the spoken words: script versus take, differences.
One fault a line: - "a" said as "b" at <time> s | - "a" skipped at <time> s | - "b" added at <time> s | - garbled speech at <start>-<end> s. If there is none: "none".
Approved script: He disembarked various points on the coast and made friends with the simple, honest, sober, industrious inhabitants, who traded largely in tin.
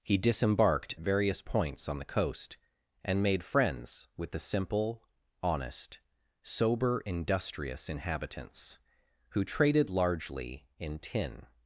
none